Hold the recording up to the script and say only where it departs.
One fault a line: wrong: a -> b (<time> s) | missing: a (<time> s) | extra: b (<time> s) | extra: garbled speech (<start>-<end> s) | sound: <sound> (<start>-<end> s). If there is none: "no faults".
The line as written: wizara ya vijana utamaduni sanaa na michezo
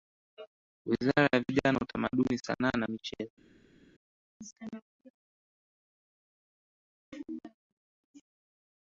no faults